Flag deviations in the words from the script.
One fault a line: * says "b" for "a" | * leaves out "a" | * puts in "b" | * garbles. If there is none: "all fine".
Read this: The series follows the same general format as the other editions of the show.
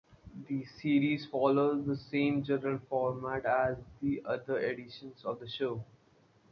all fine